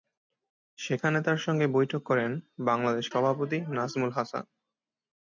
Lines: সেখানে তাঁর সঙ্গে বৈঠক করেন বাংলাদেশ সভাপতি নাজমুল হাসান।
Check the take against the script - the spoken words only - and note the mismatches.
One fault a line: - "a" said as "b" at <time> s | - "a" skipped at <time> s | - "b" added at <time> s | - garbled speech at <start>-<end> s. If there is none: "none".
none